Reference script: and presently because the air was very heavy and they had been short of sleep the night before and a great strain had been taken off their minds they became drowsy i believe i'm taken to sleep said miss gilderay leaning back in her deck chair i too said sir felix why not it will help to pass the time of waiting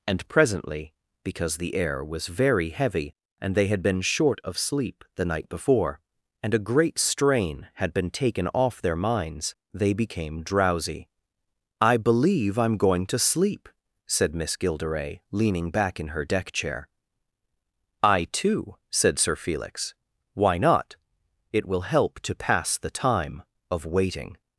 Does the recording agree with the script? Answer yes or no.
no